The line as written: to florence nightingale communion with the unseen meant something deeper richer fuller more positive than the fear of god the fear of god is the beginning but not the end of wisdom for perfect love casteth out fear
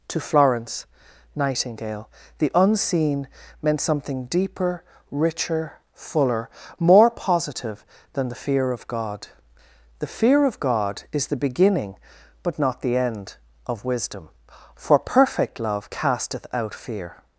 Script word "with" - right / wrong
wrong